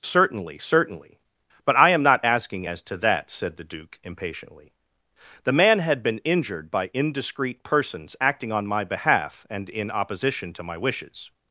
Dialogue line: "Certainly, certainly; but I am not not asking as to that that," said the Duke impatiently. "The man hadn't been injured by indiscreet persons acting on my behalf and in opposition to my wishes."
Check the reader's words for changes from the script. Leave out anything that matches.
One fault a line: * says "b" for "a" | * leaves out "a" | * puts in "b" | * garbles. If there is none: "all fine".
* leaves out "not"
* leaves out "that"
* says "had" for "hadn't"